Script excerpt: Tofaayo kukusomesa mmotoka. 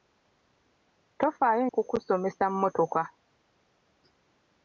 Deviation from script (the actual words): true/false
false